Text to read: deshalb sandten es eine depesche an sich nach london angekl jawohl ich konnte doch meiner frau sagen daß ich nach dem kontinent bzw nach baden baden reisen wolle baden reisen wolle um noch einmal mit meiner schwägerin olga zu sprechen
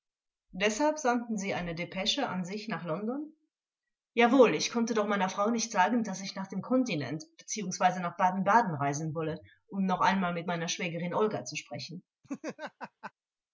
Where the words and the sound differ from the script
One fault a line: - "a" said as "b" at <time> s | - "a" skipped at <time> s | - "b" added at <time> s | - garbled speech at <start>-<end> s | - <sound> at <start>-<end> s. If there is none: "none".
- "es" said as "sie" at 1.4 s
- "nicht" added at 5.5 s
- "baden reisen wolle" skipped at 9.4 s
- laugh at 12.2-13.1 s